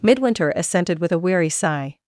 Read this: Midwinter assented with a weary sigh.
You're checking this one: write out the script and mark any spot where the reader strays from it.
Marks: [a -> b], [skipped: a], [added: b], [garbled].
Midwinter assented with a weary sigh.